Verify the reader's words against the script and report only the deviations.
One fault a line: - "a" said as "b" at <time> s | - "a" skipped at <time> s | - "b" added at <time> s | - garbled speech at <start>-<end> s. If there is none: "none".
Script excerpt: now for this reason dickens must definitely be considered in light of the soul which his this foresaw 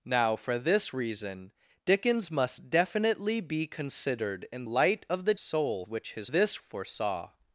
none